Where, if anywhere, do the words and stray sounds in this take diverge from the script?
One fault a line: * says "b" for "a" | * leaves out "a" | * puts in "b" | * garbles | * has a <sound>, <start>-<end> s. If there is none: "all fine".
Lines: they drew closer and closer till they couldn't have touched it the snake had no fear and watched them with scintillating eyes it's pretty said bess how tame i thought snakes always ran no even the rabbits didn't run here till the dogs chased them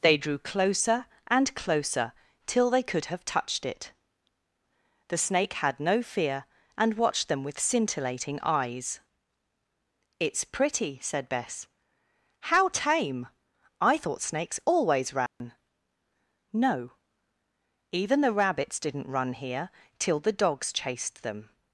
* says "could" for "couldn't"
* has a dropout, 15.3-15.4 s